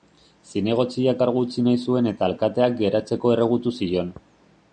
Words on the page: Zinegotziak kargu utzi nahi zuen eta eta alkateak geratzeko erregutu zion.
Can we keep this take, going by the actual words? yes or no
no